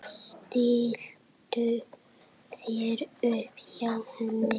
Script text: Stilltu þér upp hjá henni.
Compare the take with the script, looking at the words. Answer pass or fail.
pass